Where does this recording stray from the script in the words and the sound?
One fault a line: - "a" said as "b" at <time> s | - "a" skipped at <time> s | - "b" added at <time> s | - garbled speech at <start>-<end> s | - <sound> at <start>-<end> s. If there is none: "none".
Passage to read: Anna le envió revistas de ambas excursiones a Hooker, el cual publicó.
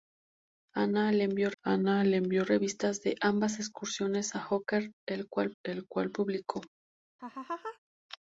- "anna le envió" added at 1.6 s
- "el cual" added at 5.6 s
- laugh at 7.2-7.8 s